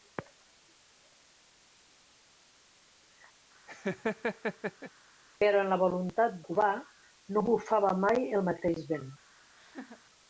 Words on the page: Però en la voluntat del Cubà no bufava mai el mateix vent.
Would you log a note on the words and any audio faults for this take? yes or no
yes